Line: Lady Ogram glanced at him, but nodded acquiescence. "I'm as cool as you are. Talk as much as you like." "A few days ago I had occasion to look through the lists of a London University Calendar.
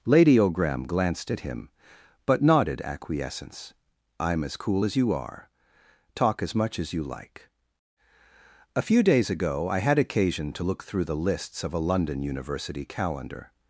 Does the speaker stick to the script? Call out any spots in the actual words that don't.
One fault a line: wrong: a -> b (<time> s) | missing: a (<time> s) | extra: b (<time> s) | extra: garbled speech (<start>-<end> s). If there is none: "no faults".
no faults